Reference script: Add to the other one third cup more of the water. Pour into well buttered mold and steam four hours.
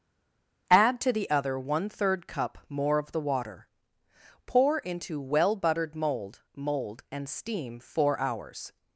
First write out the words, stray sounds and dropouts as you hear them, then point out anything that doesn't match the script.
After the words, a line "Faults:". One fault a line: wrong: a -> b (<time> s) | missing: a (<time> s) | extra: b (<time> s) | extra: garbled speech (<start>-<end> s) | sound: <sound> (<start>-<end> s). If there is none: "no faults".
Add to the other one third cup more of the water. Pour into well buttered mold mold and steam four hours.
Faults:
extra: mold (6.6 s)